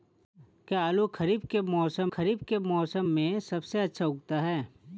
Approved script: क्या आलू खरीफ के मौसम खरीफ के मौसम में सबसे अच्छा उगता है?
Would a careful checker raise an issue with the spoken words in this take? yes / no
no